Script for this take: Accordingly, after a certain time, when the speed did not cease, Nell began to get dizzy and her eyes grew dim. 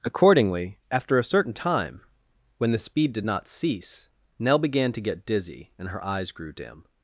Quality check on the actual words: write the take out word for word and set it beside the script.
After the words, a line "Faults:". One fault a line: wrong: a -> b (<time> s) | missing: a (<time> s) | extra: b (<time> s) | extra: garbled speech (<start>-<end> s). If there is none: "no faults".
Accordingly, after a certain time, when the speed did not cease, Nell began to get dizzy and her eyes grew dim.
Faults:
no faults